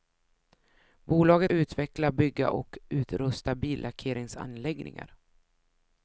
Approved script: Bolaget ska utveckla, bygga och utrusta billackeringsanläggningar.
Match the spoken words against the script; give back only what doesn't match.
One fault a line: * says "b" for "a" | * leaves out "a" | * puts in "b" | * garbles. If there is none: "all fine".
* leaves out "ska"